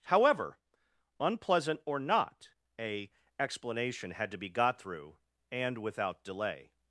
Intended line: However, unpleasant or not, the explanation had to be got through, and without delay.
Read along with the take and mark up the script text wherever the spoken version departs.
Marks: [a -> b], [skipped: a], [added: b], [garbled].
However, unpleasant or not, [the -> a] explanation had to be got through, and without delay.